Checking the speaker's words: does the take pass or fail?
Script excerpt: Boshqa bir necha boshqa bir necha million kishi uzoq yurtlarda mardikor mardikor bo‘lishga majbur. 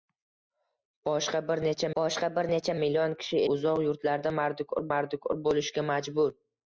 pass